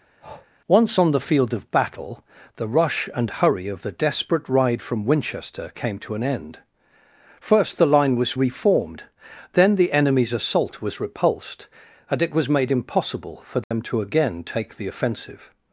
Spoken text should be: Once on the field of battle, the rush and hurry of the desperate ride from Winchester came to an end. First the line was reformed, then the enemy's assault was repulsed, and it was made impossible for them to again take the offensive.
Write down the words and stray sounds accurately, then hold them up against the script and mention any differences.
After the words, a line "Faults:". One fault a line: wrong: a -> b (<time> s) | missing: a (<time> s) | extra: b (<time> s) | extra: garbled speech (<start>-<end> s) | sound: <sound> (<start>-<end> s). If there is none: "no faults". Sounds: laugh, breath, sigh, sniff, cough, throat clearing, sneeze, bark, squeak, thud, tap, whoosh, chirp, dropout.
Once on the field of battle, the rush and hurry of the desperate ride from Winchester came to an end. First the line was reformed, then the enemy's assault was repulsed, and it was made impossible for them to again take the offensive.
Faults:
sound: breath (0.2-0.5 s)
sound: dropout (13.6-13.7 s)